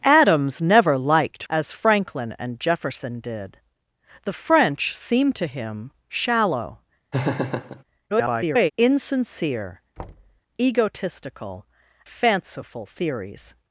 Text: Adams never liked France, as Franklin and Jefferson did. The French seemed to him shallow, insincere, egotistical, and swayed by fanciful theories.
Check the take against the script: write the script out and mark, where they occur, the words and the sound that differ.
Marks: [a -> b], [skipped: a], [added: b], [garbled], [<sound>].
Adams never liked [skipped: France,] as Franklin and Jefferson did. The French seemed to him shallow, [laugh] [garbled] insincere, [thud] egotistical, [skipped: and swayed by] fanciful theories.